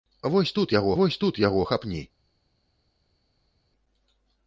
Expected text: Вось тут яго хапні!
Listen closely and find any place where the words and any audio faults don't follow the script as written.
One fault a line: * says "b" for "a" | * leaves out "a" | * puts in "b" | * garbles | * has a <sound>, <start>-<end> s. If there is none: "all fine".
* puts in "вось тут яго"